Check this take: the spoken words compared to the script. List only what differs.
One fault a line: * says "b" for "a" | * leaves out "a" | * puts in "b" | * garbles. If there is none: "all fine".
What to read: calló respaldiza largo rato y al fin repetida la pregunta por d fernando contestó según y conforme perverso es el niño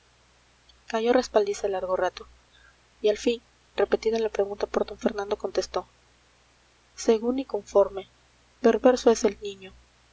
all fine